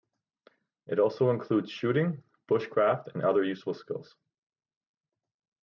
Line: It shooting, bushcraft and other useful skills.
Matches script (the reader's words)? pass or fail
fail